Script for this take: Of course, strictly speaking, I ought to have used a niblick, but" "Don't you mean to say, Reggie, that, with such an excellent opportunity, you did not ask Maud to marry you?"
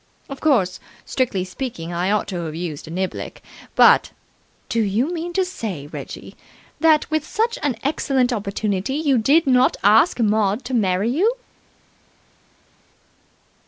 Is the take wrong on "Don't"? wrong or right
wrong